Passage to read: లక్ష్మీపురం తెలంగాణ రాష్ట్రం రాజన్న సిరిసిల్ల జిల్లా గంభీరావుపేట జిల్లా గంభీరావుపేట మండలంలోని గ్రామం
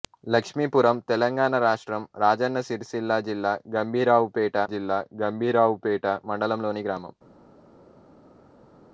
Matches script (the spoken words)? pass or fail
pass